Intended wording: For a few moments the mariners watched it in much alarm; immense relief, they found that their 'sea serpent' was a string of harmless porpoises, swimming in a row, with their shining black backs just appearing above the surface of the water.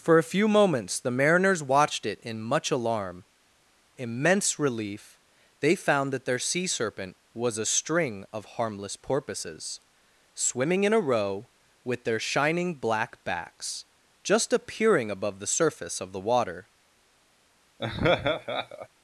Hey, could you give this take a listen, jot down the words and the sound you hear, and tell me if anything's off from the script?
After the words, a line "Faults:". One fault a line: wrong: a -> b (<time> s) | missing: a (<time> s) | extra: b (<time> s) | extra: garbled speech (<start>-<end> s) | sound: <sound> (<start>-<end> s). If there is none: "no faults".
For a few moments the mariners watched it in much alarm; immense relief, they found that their 'sea serpent' was a string of harmless porpoises, swimming in a row, with their shining black backs just appearing above the surface of the water.
Faults:
sound: laugh (17.8-18.9 s)